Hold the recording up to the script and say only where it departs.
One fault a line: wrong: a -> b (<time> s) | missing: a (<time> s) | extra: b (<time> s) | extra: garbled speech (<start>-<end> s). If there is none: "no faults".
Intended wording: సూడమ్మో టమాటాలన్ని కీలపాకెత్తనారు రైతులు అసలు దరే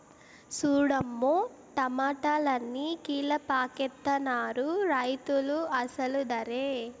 no faults